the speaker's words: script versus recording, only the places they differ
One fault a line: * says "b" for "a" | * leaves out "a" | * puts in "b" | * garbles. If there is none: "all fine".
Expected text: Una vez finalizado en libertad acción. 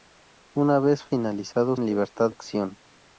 all fine